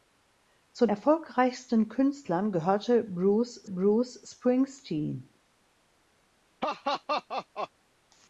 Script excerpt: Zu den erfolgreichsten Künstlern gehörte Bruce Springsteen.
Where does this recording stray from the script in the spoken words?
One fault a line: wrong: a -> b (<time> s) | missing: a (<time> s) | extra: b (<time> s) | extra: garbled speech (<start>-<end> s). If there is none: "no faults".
missing: den (0.9 s)
extra: Bruce (3.6 s)